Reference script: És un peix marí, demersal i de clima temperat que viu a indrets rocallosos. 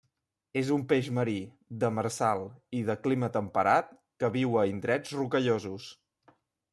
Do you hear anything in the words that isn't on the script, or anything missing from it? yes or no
no